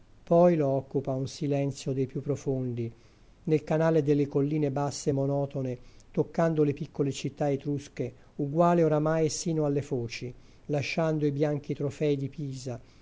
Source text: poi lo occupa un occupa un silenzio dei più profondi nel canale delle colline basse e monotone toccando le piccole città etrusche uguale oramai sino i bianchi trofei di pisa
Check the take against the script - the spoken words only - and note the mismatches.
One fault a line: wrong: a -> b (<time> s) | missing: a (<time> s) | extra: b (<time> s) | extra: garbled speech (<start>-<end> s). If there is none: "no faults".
missing: occupa un (1.3 s)
extra: alle foci lasciando (9.7 s)